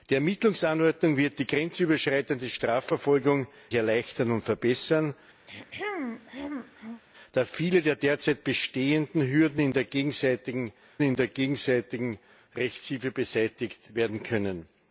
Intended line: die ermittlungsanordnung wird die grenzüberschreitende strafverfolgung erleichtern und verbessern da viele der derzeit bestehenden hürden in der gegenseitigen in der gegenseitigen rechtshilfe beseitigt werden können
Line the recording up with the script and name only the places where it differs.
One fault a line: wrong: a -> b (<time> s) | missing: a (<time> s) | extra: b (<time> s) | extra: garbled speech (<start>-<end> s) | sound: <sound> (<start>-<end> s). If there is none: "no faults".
sound: throat clearing (5.5-7.0 s)